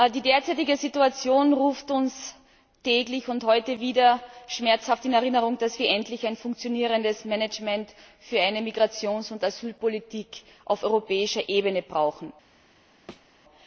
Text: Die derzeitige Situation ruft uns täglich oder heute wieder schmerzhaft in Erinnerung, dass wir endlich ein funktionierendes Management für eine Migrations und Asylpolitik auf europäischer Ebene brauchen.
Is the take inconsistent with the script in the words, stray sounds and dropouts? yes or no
yes